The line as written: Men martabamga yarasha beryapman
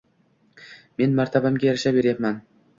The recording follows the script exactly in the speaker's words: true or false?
true